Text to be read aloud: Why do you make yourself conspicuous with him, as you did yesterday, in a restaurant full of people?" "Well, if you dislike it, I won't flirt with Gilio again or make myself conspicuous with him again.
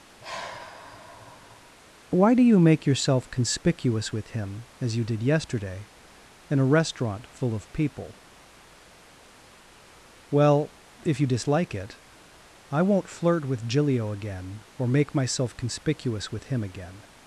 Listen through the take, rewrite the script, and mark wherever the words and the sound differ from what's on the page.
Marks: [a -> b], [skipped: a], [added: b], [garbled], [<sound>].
[sigh] Why do you make yourself conspicuous with him, as you did yesterday, in a restaurant full of people?" "Well, if you dislike it, I won't flirt with Gilio again or make myself conspicuous with him again.